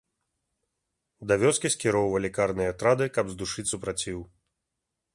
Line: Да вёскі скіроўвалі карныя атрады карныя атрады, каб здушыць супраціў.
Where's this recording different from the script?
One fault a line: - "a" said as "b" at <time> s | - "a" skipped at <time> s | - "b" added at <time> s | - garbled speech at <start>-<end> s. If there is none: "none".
- "карныя атрады" skipped at 3.0 s